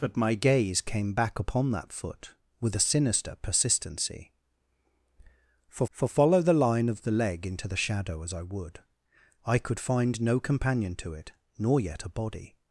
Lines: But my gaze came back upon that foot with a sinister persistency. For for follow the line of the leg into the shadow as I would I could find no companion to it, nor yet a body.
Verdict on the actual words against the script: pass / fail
pass